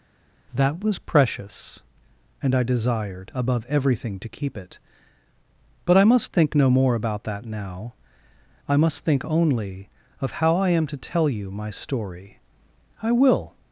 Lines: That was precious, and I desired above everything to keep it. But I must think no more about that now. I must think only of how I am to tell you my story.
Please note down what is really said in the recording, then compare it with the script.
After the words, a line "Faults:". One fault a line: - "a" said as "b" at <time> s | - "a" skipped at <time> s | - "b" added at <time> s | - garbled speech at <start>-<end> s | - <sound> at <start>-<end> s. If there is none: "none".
That was precious, and I desired above everything to keep it. But I must think no more about that now. I must think only of how I am to tell you my story. I will
Faults:
- "I will" added at 13.0 s